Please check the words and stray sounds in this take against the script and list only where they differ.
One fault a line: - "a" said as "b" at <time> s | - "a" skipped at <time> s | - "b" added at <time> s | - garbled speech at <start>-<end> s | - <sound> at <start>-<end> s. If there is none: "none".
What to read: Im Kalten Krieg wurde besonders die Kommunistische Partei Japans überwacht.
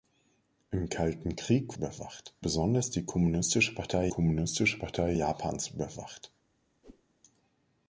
- "wurde" said as "überwacht" at 1.7 s
- "Kommunistische Partei" added at 4.1 s
- whoosh at 6.8-7.0 s